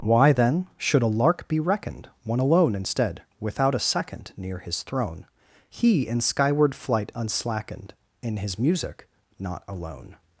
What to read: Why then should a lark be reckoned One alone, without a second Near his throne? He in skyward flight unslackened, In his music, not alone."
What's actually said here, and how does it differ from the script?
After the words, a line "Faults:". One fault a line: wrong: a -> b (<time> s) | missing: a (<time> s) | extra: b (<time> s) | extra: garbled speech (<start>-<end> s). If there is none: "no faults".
Why then should a lark be reckoned One alone, instead without a second Near his throne? He in skyward flight unslackened, In his music, not alone."
Faults:
extra: instead (2.7 s)